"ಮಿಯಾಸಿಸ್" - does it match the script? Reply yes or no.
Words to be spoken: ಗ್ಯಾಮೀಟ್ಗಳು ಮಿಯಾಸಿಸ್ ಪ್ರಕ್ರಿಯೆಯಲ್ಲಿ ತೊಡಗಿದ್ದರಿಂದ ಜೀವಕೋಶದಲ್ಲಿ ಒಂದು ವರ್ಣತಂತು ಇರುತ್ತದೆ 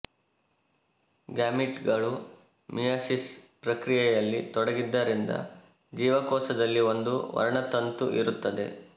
yes